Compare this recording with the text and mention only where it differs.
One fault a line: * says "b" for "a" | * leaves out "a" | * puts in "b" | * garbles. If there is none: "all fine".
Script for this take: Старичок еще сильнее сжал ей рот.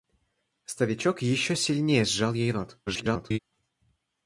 * garbles